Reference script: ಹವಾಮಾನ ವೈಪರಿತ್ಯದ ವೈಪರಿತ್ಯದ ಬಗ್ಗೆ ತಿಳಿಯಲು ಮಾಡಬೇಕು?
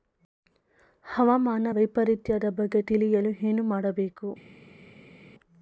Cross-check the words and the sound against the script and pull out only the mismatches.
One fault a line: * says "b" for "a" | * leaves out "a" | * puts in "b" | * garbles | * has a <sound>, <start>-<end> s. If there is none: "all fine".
* leaves out "ವೈಪರಿತ್ಯದ"
* puts in "ಏನು"